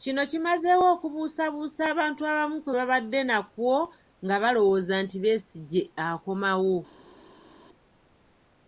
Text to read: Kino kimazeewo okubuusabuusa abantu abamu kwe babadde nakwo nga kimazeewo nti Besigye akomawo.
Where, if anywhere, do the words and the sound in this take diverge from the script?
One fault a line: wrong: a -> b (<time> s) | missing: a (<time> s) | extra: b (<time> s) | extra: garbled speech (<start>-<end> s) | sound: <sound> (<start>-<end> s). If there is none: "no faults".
wrong: kimazeewo -> balowooza (4.4 s)